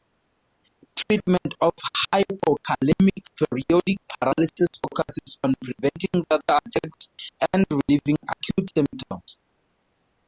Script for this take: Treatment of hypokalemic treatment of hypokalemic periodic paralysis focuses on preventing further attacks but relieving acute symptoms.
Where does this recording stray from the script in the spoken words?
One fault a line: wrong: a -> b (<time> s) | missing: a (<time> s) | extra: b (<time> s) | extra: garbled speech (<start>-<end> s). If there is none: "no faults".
missing: treatment of hypokalemic (3.2 s)
wrong: but -> and (7.5 s)